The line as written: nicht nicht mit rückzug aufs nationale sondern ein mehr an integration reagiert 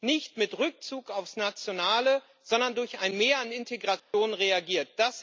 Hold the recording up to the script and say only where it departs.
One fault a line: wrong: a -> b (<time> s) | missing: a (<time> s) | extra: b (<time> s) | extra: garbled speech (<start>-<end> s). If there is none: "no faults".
missing: nicht (0.3 s)
extra: durch (2.8 s)